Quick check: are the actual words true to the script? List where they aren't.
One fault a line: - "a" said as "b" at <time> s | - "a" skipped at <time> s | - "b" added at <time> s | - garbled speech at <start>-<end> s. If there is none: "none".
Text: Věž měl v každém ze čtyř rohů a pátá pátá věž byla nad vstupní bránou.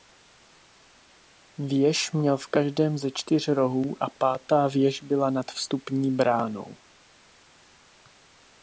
- "pátá" skipped at 4.7 s